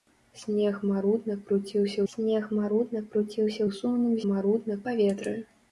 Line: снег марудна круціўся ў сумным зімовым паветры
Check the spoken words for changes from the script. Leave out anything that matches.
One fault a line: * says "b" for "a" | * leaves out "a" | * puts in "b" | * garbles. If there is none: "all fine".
* puts in "снег марудна круціўся"
* says "марудна" for "зімовым"